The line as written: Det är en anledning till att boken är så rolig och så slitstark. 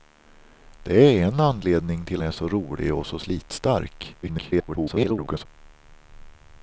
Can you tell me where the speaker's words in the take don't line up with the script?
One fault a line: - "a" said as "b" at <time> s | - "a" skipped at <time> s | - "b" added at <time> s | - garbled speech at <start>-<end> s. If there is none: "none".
- "att boken" skipped at 2.2 s
- garbled speech at 4.2-5.5 s